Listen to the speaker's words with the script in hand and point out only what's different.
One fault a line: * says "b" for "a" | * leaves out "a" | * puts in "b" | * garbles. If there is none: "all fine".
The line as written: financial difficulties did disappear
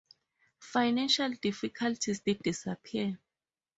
all fine